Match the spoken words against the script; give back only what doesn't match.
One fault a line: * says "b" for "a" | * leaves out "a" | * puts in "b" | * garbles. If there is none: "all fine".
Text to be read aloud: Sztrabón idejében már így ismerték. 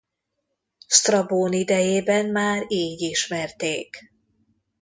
all fine